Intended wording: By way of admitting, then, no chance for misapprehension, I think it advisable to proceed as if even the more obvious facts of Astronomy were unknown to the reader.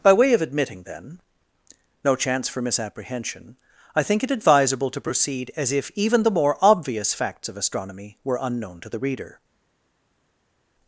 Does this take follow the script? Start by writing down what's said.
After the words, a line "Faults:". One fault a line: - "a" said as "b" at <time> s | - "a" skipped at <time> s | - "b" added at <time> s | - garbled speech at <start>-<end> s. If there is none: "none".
By way of admitting, then, no chance for misapprehension, I think it advisable to proceed as if even the more obvious facts of Astronomy were unknown to the reader.
Faults:
none